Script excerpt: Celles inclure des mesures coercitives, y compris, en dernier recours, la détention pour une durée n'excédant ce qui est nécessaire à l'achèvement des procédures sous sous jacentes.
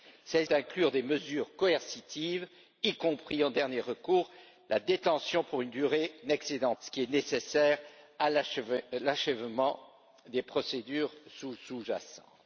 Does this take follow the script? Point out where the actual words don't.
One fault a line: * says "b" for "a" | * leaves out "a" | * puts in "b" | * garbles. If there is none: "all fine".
all fine